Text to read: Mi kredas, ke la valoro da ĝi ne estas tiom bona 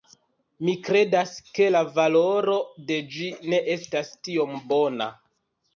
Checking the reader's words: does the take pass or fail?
fail